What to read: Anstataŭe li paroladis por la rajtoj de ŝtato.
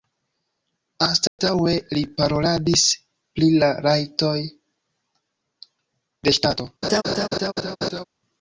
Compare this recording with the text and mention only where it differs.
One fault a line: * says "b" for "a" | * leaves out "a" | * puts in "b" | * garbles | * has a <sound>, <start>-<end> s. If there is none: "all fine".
* has a dropout, 1.3-1.4 s
* says "pri" for "por"
* has a laugh, 6.8-8.0 s